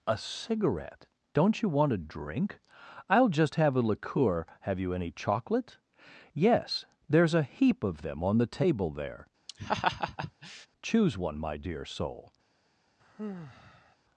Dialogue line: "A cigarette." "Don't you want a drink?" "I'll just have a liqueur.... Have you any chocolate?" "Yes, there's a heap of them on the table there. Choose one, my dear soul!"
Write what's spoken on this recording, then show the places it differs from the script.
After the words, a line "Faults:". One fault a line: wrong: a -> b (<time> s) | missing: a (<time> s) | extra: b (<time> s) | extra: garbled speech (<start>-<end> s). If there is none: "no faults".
"A cigarette." "Don't you want a drink?" "I'll just have a liqueur.... Have you any chocolate?" "Yes, there's a heap of them on the table there. Choose one, my dear soul!"
Faults:
no faults